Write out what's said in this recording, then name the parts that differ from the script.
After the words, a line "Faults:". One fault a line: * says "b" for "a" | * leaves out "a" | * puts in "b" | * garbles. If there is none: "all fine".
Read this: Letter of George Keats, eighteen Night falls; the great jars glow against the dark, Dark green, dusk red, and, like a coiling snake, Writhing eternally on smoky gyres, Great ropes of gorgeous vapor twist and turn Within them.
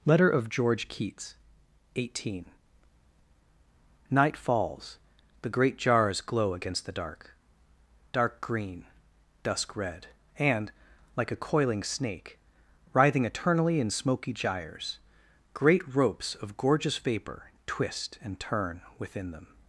Letter of George Keats, eighteen Night falls; the great jars glow against the dark, Dark green, dusk red, and, like a coiling snake, Writhing eternally in smoky gyres, Great ropes of gorgeous vapor twist and turn Within them.
Faults:
* says "in" for "on"